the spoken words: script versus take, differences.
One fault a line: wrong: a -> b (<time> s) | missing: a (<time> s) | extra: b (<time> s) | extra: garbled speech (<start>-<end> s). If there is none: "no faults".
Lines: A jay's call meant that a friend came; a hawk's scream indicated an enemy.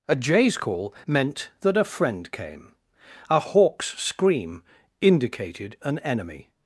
no faults